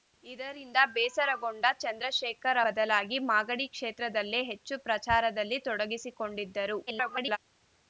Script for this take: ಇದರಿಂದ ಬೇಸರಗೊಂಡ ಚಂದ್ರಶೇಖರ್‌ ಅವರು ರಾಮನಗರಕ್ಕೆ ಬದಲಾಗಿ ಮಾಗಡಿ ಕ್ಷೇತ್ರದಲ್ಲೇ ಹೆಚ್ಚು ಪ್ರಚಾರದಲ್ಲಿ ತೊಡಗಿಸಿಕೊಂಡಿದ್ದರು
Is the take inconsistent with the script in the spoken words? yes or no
yes